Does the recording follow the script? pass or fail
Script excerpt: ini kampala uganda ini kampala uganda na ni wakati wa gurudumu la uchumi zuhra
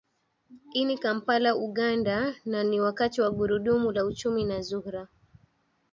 fail